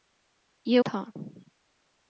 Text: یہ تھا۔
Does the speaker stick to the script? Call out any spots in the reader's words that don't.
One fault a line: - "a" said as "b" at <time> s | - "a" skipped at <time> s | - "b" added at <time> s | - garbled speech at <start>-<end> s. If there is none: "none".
none